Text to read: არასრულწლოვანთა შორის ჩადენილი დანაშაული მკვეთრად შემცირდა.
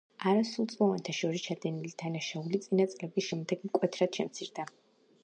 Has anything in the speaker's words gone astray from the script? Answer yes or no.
yes